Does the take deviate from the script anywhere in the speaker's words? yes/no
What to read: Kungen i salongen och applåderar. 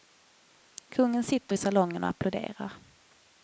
yes